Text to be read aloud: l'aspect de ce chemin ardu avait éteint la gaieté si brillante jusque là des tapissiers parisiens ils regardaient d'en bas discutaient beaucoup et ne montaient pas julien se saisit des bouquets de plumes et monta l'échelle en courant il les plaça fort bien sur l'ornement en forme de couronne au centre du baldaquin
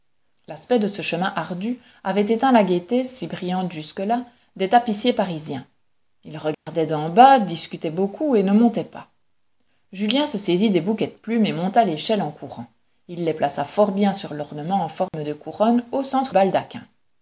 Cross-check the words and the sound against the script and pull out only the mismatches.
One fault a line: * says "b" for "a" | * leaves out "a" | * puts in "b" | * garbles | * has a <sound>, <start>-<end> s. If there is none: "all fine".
* has a dropout, 6.5-6.7 s
* has a dropout, 15.1-15.1 s
* leaves out "du"